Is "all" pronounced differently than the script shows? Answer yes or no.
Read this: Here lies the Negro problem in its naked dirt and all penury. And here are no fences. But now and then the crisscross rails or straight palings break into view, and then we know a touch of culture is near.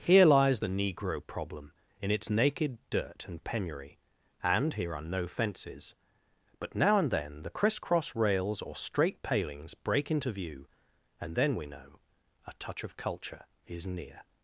yes